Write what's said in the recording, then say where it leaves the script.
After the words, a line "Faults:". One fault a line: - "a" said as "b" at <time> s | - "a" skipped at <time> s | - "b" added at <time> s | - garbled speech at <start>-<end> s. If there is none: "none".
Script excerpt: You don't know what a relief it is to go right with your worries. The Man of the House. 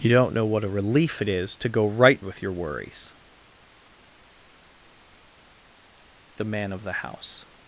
You don't know what a relief it is to go right with your worries. The Man of the House.
Faults:
none